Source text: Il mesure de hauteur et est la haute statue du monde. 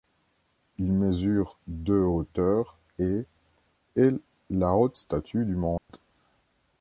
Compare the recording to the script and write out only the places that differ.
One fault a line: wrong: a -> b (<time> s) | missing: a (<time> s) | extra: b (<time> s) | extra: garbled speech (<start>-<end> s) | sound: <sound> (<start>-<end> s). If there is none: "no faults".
sound: dropout (5.8-5.9 s)